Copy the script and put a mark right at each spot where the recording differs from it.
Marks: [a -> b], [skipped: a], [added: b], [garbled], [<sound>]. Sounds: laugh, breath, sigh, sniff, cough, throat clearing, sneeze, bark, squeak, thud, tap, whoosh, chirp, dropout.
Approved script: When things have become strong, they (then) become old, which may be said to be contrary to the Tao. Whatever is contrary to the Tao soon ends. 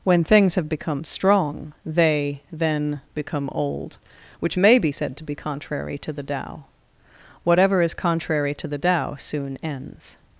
When things have become strong, they (then) become old, which may be said to be contrary to the Tao. Whatever is contrary to the Tao soon ends.